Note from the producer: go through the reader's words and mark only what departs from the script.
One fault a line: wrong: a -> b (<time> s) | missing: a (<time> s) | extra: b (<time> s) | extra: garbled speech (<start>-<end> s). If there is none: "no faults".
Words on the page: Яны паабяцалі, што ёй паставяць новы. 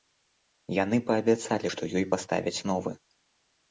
no faults